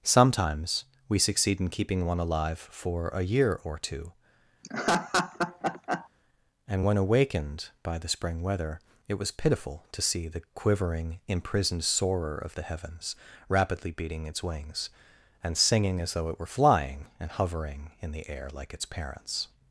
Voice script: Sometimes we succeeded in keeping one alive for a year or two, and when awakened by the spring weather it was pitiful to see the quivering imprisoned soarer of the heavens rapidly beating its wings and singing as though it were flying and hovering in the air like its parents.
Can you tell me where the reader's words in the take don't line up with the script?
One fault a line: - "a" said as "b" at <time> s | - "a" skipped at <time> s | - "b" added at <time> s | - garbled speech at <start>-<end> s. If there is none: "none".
- "succeeded" said as "succeed" at 1.2 s